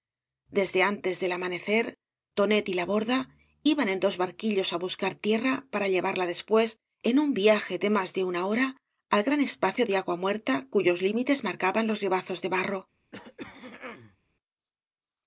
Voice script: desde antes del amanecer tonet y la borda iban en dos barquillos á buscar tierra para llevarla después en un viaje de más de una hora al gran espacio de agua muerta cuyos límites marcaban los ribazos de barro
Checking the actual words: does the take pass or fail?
pass